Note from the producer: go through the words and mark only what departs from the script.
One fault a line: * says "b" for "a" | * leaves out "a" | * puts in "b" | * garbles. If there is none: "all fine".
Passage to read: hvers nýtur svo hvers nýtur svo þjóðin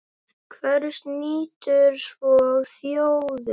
* leaves out "hvers nýtur svo"